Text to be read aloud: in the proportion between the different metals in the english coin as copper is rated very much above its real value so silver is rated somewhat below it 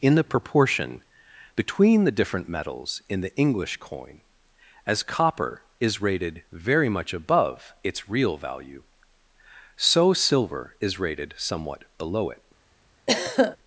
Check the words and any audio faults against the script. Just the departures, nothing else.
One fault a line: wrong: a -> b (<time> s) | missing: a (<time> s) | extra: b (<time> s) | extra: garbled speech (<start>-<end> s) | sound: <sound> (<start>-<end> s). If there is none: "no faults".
sound: throat clearing (13.1-13.6 s)